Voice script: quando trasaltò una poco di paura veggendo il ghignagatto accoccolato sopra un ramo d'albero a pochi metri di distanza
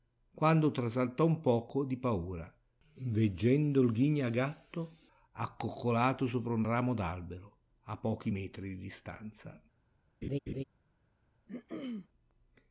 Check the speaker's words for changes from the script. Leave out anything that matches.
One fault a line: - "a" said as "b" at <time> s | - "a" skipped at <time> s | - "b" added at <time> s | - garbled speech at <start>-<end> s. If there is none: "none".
- "una" said as "un" at 1.3 s